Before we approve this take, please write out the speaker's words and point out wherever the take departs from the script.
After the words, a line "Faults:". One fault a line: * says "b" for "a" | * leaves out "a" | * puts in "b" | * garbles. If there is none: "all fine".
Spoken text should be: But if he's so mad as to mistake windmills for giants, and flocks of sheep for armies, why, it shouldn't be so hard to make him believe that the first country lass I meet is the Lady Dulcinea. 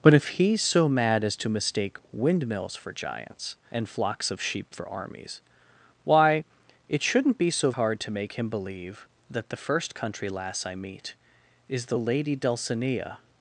But if he's so mad as to mistake windmills for giants, and flocks of sheep for armies, why, it shouldn't be so hard to make him believe that the first country lass I meet is the Lady Dulcinea.
Faults:
all fine